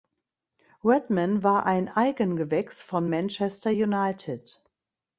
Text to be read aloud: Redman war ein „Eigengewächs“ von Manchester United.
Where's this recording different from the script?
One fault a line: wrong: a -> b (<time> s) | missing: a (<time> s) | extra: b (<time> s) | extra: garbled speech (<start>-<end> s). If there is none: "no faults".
no faults